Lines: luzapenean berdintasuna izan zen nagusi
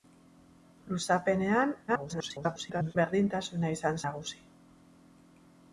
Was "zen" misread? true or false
true